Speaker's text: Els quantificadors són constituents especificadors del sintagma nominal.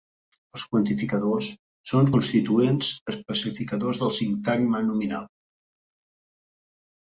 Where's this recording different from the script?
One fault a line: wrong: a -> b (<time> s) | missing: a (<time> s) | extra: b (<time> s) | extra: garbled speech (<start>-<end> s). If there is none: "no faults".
no faults